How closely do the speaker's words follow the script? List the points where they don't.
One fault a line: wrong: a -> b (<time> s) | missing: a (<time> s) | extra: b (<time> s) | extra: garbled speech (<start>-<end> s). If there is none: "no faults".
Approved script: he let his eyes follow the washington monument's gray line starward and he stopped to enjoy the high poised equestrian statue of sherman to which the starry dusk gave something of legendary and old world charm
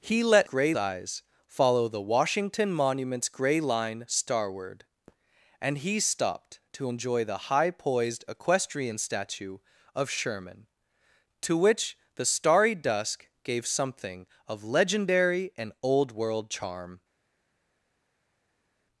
wrong: his -> gray (0.4 s)